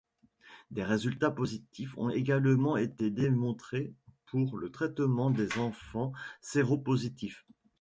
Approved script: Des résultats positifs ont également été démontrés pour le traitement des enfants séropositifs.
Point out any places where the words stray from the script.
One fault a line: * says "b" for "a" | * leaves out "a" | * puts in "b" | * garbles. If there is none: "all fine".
all fine